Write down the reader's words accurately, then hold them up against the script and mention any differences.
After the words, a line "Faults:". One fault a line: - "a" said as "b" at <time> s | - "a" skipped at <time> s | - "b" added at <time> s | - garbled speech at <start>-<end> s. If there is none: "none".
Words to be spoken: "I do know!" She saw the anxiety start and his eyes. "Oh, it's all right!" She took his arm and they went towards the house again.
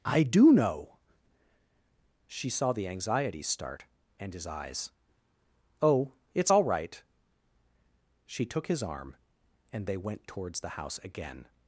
"I do know!" She saw the anxiety start and his eyes. "Oh, it's all right!" She took his arm and they went towards the house again.
Faults:
none